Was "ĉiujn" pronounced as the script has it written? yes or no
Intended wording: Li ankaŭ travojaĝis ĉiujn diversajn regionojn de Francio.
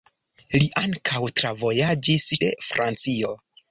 no